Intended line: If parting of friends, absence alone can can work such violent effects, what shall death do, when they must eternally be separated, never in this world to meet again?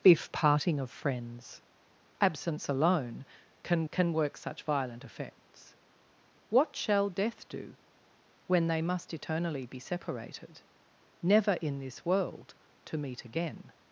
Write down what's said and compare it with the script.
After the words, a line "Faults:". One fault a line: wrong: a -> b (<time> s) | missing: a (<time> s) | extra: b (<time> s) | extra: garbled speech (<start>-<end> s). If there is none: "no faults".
If parting of friends, absence alone can can work such violent effects, what shall death do, when they must eternally be separated, never in this world to meet again?
Faults:
no faults